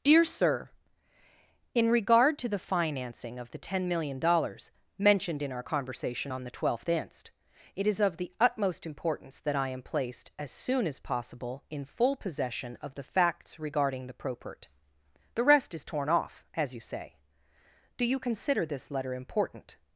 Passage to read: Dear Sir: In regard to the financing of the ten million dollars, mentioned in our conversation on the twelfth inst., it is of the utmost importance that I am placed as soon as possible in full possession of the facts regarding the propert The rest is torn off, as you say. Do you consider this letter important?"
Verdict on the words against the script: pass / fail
pass